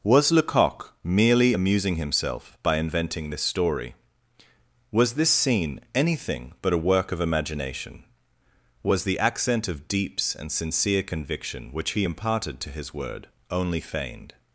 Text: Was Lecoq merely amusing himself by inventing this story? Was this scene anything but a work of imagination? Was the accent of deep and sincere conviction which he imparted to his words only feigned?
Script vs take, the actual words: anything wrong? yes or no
yes